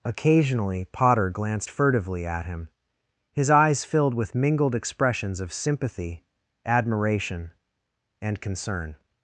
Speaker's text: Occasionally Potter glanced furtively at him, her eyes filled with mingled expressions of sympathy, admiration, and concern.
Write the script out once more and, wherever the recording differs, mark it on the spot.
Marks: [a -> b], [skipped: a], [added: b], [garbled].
Occasionally Potter glanced furtively at him, [her -> his] eyes filled with mingled expressions of sympathy, admiration, and concern.